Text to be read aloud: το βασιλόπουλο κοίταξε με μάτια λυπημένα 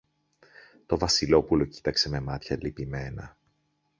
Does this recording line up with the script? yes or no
yes